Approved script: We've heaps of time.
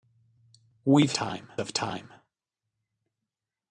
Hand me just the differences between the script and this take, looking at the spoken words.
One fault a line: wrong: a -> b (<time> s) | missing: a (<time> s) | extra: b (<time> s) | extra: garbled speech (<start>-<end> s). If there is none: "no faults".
wrong: heaps -> time (1.1 s)